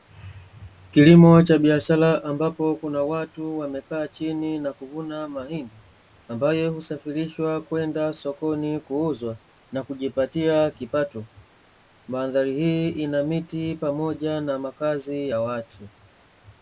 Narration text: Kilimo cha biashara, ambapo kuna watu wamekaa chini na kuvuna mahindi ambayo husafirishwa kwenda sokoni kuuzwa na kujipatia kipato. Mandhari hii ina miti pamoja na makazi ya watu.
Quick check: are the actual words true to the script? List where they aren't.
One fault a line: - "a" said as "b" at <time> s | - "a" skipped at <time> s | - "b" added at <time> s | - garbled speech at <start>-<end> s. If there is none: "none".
none